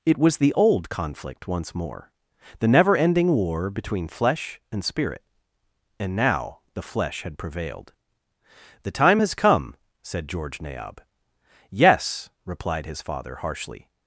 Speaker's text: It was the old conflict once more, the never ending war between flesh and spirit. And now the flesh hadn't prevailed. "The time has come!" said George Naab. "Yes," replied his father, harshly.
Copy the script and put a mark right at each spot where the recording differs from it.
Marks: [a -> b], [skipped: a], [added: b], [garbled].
It was the old conflict once more, the never ending war between flesh and spirit. And now the flesh [hadn't -> had] prevailed. "The time has come!" said George Naab. "Yes," replied his father, harshly.